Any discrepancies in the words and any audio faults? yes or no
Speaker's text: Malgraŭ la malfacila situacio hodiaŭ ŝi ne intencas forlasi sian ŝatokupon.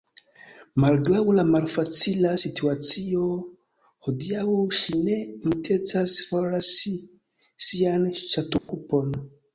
yes